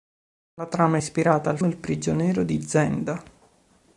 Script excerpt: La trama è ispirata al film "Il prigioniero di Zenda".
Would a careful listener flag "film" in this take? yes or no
yes